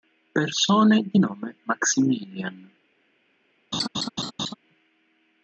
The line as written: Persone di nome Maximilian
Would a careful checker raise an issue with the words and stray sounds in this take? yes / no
yes